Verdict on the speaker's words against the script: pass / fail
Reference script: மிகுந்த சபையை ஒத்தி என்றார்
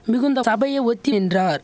pass